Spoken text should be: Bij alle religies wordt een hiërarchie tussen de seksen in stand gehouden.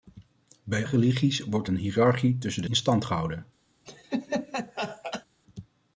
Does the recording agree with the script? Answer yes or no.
no